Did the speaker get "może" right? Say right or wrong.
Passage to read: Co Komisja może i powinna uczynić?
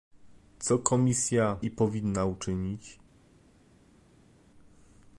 wrong